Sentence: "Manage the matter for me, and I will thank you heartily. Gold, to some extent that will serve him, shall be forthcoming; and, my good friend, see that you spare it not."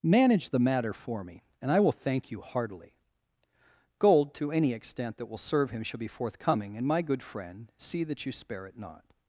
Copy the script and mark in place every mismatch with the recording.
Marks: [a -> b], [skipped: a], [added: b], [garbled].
"Manage the matter for me, and I will thank you heartily. Gold, to [some -> any] extent that will serve him, shall be forthcoming; and, my good friend, see that you spare it not."